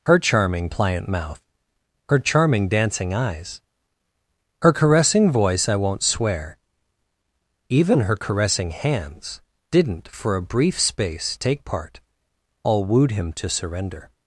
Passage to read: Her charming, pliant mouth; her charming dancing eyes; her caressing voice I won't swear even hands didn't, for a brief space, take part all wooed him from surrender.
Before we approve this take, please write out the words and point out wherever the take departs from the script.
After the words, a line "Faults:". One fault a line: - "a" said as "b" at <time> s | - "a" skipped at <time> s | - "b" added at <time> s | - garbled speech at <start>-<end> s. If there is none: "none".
Her charming, pliant mouth; her charming dancing eyes; her caressing voice I won't swear even her caressing hands didn't, for a brief space, take part all wooed him to surrender.
Faults:
- "her caressing" added at 8.0 s
- "from" said as "to" at 13.3 s